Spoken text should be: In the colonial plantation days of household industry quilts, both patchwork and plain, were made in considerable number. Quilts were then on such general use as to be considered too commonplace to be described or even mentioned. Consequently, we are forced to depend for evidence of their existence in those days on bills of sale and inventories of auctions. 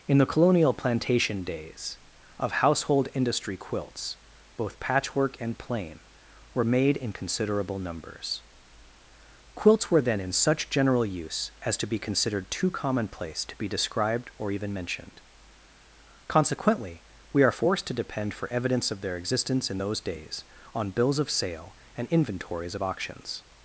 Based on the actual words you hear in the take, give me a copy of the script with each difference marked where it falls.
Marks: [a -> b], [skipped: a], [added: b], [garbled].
In the colonial plantation days of household industry quilts, both patchwork and plain, were made in considerable [number. -> numbers] Quilts were then [on -> in] such general use as to be considered too commonplace to be described or even mentioned. Consequently, we are forced to depend for evidence of their existence in those days on bills of sale and inventories of auctions.